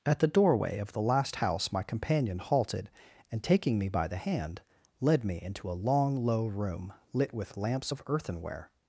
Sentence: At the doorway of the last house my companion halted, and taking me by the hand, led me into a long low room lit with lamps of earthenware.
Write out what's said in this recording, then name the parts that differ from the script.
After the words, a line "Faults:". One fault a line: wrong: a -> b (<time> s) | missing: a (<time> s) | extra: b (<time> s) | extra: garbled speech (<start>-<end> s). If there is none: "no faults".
At the doorway of the last house my companion halted, and taking me by the hand, led me into a long low room lit with lamps of earthenware.
Faults:
no faults